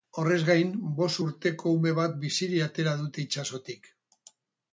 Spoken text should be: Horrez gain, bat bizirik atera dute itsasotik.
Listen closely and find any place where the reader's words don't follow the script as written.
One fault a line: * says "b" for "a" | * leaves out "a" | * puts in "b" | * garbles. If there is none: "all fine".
* puts in "bost urteko ume"